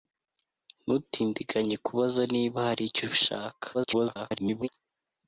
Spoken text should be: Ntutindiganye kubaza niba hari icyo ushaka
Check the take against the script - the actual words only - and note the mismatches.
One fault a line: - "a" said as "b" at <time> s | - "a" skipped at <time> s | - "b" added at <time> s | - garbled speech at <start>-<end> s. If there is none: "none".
- garbled speech at 3.7-4.7 s